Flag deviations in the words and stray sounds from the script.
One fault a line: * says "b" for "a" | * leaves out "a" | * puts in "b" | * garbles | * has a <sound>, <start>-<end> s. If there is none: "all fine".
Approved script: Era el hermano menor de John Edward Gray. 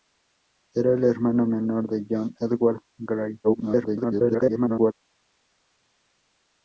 * garbles